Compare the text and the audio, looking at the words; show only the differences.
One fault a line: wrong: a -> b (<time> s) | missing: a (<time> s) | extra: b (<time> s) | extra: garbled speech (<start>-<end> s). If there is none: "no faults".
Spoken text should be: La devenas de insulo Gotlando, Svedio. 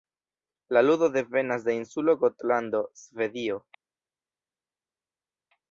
extra: ludo (0.8 s)